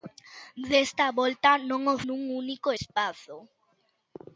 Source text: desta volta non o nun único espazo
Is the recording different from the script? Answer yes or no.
no